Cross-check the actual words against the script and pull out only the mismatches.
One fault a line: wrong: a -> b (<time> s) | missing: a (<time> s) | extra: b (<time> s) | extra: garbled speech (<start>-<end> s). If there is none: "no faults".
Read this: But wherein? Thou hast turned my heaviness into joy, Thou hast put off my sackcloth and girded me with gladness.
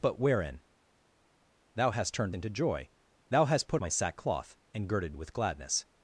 missing: my heaviness (2.3 s)
missing: off (3.8 s)
missing: me (5.1 s)